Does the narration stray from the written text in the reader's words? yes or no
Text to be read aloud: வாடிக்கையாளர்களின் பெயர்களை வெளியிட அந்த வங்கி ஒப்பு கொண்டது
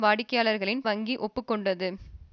yes